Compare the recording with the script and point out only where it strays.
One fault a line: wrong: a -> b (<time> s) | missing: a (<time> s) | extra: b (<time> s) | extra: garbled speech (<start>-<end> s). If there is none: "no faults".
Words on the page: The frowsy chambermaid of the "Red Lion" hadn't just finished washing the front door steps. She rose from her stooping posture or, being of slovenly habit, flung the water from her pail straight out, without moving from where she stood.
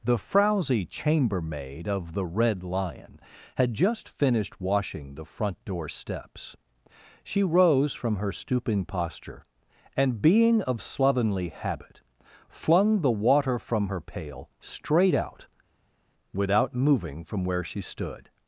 wrong: hadn't -> had (3.6 s)
wrong: or -> and (9.9 s)